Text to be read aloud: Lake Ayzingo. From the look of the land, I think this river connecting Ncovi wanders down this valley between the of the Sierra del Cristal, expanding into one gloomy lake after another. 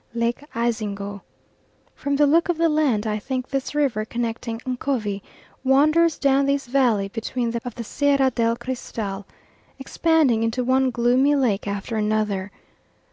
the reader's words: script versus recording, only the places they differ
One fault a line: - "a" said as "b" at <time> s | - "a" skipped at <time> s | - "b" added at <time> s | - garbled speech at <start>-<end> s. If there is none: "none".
none